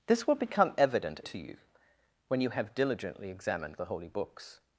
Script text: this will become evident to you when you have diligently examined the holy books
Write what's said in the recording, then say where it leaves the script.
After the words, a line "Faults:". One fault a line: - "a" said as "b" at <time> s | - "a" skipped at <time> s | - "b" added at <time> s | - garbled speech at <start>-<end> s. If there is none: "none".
this will become evident to you when you have diligently examined the holy books
Faults:
none